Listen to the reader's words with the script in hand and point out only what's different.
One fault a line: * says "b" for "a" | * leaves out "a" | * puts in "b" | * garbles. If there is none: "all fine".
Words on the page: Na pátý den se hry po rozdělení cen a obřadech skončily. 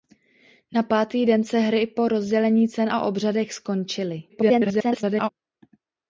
* garbles